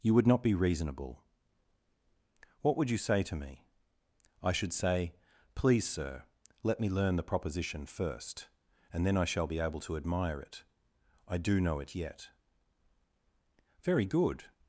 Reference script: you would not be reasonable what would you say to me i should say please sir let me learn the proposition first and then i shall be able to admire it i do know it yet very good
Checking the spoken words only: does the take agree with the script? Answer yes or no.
yes